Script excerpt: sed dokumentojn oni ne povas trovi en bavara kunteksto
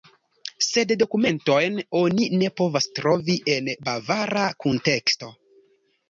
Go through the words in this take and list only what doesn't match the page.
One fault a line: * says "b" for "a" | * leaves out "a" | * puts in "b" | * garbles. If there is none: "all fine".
all fine